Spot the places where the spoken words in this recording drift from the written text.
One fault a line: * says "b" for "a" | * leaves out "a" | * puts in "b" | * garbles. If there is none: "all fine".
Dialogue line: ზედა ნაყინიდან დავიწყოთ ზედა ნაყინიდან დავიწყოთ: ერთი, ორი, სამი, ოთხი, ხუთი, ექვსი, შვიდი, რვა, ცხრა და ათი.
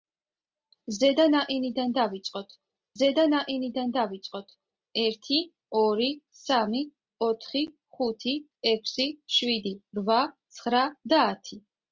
all fine